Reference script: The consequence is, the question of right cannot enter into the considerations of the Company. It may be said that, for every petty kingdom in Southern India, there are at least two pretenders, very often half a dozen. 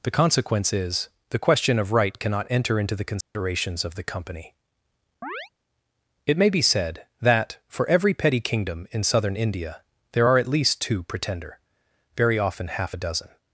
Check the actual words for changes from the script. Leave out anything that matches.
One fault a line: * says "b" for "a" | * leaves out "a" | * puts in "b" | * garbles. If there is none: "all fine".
* says "pretender" for "pretenders"